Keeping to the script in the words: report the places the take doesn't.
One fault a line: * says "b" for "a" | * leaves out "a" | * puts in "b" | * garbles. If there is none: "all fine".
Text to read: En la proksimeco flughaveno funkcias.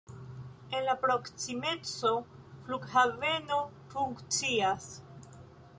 all fine